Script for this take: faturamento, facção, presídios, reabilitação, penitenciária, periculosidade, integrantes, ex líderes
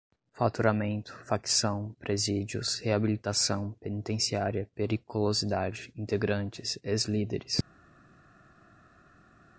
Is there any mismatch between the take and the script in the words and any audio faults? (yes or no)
no